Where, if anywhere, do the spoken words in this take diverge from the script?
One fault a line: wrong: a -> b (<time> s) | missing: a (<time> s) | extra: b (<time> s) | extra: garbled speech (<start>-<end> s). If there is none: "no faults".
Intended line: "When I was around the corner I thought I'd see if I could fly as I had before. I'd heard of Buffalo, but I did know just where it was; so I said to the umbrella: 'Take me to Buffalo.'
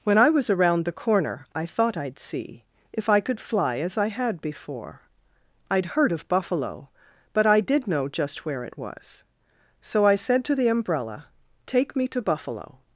no faults